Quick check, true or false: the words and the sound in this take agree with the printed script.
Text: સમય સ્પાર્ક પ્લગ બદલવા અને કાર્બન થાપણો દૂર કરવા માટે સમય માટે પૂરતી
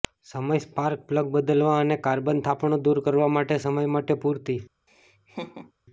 false